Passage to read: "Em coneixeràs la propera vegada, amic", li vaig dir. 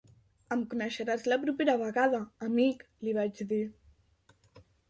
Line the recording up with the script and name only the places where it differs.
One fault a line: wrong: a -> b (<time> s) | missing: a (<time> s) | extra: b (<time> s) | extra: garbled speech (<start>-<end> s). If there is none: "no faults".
no faults